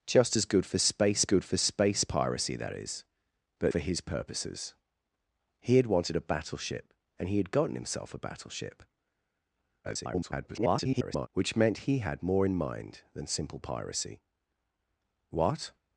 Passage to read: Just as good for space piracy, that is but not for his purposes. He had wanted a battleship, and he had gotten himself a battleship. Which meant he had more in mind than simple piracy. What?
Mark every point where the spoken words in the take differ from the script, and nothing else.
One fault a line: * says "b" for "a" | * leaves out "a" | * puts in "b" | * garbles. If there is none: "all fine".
* puts in "good for space"
* leaves out "not"
* garbles